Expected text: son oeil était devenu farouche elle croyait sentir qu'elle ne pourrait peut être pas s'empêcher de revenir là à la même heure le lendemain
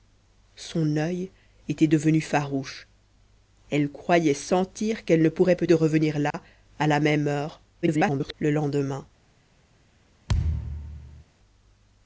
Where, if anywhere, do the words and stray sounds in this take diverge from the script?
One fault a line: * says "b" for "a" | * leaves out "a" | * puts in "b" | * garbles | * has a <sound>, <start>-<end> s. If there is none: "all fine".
* leaves out "être pas s'empêcher"
* has a dropout, 6.3-6.3 s
* garbles
* has a thud, 10.3-11.2 s